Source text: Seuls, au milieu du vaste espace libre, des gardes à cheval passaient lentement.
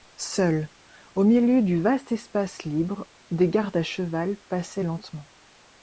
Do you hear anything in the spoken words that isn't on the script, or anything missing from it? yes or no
no